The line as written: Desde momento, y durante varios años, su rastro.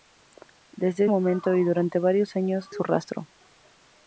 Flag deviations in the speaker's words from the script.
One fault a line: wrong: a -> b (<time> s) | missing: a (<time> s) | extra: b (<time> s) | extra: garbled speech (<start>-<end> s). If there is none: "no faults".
no faults